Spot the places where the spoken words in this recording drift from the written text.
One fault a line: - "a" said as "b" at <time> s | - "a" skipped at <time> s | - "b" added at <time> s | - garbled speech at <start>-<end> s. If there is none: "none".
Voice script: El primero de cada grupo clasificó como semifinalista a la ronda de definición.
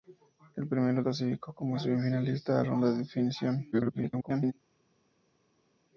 - "de cada grupo" skipped at 1.0 s
- "la" skipped at 2.6 s
- garbled speech at 3.7-4.5 s